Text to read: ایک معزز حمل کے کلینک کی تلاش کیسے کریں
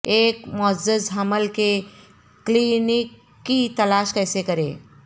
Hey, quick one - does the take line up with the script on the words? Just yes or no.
yes